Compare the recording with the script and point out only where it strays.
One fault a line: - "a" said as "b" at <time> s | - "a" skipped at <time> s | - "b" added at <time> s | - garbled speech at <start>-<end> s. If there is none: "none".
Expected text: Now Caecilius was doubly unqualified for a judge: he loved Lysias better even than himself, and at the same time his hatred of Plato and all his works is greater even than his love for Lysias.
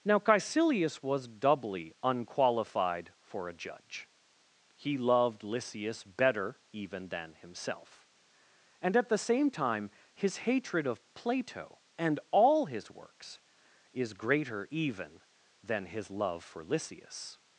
none